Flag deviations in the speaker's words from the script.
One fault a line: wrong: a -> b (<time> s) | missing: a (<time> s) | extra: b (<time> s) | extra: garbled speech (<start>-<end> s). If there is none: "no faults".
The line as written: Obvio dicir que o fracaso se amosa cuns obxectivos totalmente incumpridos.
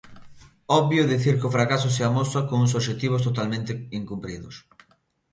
no faults